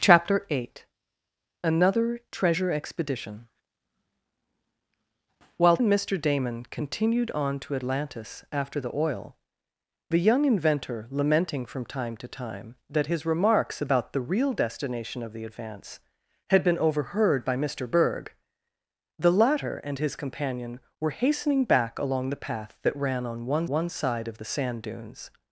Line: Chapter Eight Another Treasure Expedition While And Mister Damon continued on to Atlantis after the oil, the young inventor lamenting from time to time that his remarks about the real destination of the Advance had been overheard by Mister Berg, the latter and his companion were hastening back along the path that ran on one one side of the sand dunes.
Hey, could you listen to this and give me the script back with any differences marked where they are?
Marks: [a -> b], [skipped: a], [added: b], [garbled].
Chapter Eight Another Treasure Expedition While And Mister Damon continued on to Atlantis after the oil, the young inventor lamenting from time to time that his remarks about the real destination of the Advance had been overheard by Mister Berg, the latter and his companion were hastening back along the path that ran on one one side of the sand dunes.